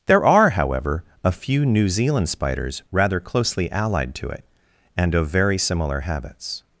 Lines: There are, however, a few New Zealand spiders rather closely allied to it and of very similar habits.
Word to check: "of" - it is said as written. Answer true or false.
true